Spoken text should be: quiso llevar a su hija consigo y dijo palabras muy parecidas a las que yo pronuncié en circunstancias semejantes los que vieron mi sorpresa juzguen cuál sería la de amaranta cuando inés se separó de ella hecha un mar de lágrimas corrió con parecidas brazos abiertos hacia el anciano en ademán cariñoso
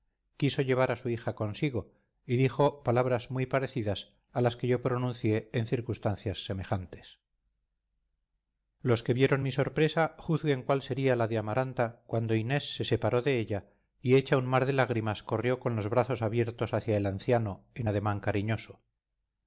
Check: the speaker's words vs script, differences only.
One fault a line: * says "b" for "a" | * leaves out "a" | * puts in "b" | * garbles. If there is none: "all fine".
* puts in "y"
* says "los" for "parecidas"